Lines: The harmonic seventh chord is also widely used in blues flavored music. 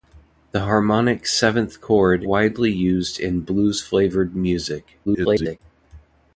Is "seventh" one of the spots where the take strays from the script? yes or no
no